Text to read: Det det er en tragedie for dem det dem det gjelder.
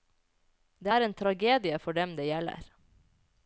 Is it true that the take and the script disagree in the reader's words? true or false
true